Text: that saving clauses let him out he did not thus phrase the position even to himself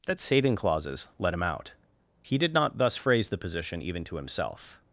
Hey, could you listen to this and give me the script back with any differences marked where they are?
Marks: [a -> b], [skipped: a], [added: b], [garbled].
that saving clauses let him out he did not thus phrase the position even to himself